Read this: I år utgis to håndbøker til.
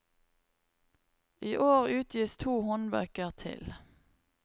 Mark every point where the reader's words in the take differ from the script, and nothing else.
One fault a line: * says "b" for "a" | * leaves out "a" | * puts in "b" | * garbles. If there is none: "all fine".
all fine